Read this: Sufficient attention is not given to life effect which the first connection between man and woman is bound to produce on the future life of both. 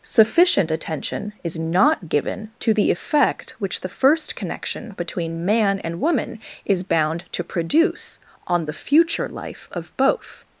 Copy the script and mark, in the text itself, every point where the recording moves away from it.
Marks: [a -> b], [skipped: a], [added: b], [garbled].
Sufficient attention is not given to [life -> the] effect which the first connection between man and woman is bound to produce on the future life of both.